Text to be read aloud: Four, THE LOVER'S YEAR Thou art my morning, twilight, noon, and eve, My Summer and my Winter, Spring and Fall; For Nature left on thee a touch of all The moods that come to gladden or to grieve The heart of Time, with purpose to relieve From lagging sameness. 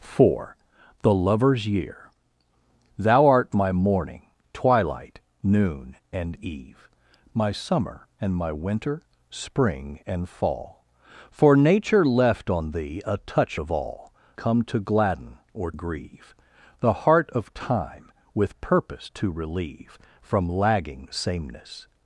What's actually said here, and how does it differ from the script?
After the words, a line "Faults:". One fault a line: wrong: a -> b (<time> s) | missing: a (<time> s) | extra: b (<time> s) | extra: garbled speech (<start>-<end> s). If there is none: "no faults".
Four, THE LOVER'S YEAR Thou art my morning, twilight, noon, and eve, My Summer and my Winter, Spring and Fall; For Nature left on thee a touch of all Come to gladden or grieve The heart of Time, with purpose to relieve From lagging sameness.
Faults:
missing: The moods that (14.1 s)
missing: to (15.7 s)